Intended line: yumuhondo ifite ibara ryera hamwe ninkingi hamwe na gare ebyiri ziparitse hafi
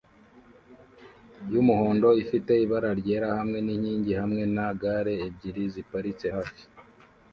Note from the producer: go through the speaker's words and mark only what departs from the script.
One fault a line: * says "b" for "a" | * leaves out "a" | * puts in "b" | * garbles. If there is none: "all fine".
all fine